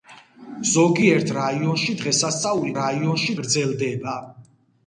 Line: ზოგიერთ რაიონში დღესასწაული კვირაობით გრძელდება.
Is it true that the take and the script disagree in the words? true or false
true